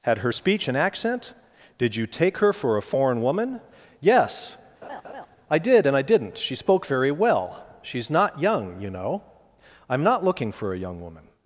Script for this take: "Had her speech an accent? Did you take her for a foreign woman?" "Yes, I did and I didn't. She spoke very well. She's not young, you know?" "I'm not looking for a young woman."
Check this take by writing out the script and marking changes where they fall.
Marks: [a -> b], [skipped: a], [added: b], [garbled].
"Had her speech an accent? Did you take her for a foreign woman?" "Yes, I did and I didn't. She spoke very well. She's not young, you know?" "I'm not looking for a young woman."